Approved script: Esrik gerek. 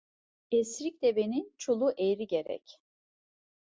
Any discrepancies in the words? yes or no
yes